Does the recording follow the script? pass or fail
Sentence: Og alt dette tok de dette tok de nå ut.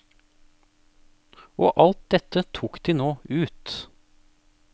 fail